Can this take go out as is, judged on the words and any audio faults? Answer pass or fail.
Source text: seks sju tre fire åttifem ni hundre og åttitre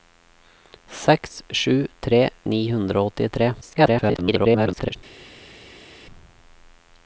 fail